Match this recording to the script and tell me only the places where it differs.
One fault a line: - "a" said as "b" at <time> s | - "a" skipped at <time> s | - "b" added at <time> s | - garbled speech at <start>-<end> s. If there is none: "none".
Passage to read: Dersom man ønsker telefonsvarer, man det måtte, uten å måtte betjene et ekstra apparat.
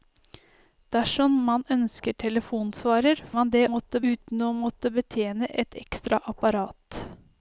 none